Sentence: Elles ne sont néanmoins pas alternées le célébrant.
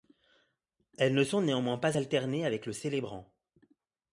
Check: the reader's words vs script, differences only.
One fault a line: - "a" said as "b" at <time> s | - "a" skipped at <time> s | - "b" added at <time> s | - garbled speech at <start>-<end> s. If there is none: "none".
- "avec" added at 2.5 s